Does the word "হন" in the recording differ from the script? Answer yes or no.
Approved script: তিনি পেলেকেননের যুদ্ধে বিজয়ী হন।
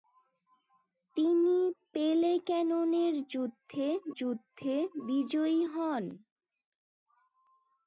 no